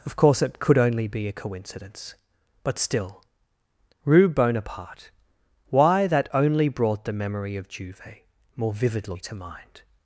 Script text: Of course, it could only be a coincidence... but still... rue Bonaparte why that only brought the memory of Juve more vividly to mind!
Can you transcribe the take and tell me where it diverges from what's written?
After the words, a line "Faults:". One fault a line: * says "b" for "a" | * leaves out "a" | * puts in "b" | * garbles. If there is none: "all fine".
Of course, it could only be a coincidence... but still... rue Bonaparte why that only brought the memory of Juve more vividly to mind!
Faults:
all fine